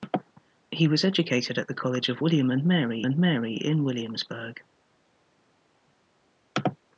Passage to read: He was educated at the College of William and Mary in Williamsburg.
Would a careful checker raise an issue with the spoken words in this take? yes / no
yes